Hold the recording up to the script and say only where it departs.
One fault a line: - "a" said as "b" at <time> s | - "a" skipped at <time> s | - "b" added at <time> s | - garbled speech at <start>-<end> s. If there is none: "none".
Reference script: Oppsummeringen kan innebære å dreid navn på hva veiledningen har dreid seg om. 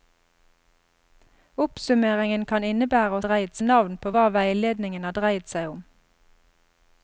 none